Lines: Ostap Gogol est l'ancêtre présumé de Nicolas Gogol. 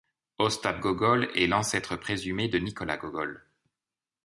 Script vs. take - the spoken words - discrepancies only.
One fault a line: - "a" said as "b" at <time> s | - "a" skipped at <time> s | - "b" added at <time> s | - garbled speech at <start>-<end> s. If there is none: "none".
none